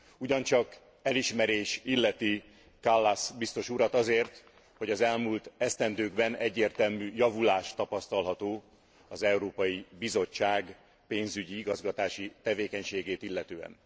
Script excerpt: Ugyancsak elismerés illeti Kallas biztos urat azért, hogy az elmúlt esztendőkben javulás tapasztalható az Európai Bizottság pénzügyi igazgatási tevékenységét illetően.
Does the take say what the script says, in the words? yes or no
no